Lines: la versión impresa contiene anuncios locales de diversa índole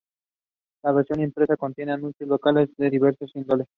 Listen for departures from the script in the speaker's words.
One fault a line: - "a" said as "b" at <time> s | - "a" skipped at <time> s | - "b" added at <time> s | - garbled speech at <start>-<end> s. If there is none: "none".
none